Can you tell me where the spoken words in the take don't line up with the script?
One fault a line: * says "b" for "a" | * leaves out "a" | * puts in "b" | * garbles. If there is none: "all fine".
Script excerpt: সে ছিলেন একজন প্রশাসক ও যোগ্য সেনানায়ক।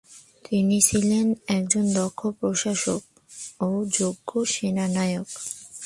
* says "তিনি" for "সে"
* puts in "দক্ষ"